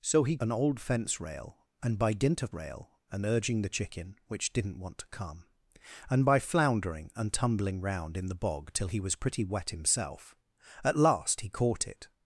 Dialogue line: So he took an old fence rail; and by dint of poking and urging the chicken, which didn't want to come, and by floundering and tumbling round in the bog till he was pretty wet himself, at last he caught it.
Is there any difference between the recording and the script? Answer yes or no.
yes